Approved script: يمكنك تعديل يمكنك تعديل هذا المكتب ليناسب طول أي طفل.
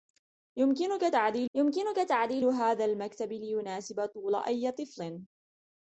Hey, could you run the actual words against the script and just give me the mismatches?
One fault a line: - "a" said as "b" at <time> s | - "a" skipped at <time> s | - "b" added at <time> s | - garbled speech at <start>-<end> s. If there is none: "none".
none